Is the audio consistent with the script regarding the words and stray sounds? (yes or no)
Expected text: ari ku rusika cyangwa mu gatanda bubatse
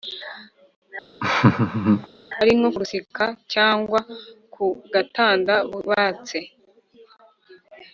no